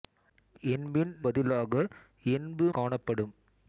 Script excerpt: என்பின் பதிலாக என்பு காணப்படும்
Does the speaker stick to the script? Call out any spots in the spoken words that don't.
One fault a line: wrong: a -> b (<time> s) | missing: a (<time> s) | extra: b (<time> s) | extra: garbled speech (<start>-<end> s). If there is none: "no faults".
no faults